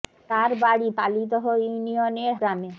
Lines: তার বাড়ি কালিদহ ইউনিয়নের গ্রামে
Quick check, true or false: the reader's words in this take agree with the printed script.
true